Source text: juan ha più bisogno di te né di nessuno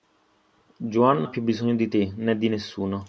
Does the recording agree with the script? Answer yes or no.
yes